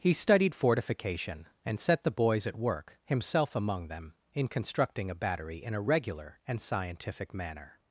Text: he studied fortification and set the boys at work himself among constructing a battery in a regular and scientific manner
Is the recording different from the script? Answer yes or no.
yes